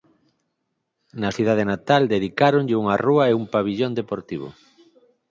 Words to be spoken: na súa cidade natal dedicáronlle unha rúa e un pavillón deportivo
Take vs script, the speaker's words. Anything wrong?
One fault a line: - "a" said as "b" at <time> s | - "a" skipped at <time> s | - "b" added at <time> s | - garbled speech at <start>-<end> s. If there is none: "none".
- "súa" skipped at 1.3 s